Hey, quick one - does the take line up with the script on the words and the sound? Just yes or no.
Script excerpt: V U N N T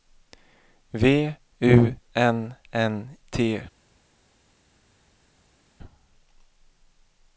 yes